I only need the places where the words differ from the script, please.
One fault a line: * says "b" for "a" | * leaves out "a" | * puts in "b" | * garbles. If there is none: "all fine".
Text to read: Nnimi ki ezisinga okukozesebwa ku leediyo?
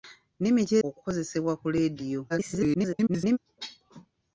* leaves out "ezisinga"
* garbles